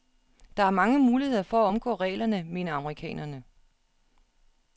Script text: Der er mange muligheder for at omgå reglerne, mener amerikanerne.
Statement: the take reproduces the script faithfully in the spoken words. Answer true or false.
true